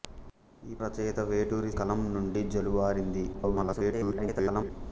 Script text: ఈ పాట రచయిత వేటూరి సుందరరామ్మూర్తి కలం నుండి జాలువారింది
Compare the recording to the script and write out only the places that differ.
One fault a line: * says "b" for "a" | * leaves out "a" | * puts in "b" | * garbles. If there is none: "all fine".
* leaves out "పాట"
* leaves out "సుందరరామ్మూర్తి"
* garbles